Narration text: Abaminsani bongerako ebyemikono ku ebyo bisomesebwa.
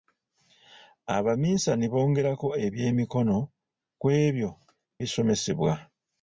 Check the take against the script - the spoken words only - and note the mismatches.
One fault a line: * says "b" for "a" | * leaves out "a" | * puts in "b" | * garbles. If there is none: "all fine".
all fine